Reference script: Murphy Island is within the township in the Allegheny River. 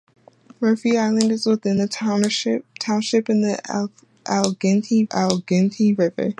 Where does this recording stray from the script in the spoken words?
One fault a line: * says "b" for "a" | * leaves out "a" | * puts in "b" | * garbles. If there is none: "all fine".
* puts in "Allegheny"